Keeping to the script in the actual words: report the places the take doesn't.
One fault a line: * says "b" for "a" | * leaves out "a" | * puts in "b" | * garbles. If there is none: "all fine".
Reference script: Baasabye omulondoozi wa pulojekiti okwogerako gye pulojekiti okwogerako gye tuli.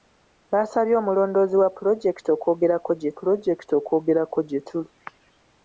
all fine